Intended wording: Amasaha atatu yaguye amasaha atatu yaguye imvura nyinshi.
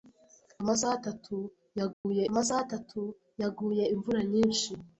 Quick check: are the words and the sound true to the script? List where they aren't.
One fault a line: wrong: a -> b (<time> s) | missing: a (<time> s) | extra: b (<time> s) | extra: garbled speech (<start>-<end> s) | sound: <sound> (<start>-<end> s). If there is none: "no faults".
sound: dropout (1.9-2.0 s)